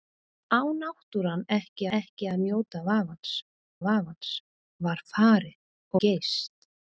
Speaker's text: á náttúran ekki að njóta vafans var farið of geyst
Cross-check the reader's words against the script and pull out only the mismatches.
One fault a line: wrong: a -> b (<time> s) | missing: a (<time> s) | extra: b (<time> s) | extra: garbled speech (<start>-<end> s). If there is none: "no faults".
extra: ekki (2.0 s)
extra: vafans (3.9 s)
missing: of (5.6 s)